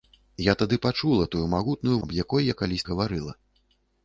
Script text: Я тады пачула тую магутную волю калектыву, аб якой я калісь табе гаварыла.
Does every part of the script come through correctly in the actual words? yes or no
no